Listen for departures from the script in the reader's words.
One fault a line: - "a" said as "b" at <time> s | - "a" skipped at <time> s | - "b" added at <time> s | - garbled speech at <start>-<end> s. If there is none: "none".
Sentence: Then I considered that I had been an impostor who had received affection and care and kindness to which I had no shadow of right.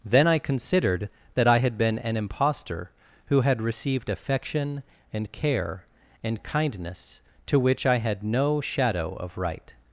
none